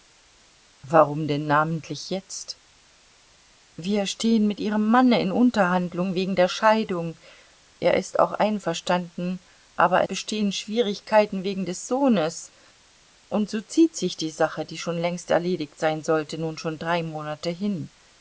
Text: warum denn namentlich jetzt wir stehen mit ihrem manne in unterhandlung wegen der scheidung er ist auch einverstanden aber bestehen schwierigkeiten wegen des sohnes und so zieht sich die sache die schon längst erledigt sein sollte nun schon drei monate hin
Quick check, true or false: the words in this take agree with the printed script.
true